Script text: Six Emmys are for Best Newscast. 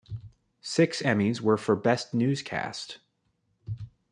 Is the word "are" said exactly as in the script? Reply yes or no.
no